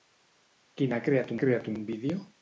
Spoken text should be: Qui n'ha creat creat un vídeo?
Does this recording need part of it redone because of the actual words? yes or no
no